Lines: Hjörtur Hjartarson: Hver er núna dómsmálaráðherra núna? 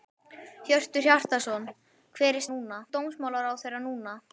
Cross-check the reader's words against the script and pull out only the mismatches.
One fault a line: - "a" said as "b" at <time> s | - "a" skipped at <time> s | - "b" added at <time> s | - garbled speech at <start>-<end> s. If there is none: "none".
none